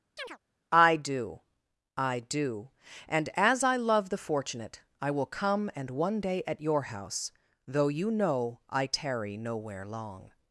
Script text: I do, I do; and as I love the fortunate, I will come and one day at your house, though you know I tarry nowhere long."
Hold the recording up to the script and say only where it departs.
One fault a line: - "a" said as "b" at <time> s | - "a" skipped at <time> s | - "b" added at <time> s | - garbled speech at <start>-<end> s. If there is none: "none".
none